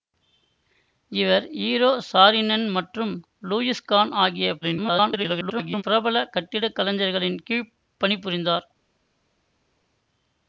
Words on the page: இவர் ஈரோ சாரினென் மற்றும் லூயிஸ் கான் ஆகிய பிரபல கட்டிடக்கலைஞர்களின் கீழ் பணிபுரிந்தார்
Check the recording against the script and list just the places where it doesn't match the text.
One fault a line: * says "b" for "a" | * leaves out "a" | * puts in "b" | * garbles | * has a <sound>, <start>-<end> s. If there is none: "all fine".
* garbles